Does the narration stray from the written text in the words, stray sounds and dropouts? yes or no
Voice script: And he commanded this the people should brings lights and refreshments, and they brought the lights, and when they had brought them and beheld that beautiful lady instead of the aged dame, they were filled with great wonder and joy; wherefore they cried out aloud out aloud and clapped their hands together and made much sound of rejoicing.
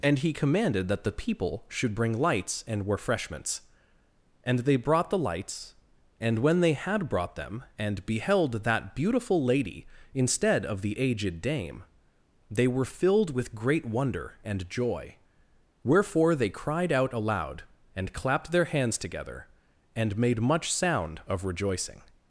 yes